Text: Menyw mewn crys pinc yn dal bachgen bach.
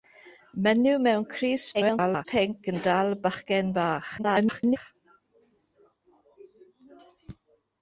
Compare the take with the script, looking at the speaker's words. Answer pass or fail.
fail